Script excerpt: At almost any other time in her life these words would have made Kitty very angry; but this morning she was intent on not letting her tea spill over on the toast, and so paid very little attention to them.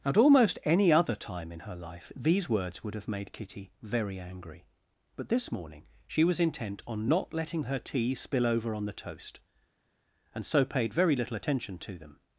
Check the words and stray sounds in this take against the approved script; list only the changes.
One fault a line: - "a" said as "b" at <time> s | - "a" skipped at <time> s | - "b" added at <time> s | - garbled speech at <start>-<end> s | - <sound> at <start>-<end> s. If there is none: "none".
none